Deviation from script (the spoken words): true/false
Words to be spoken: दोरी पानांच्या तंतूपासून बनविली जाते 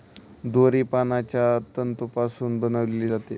false